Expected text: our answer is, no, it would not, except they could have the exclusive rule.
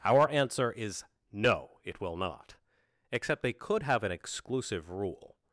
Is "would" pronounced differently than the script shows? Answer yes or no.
yes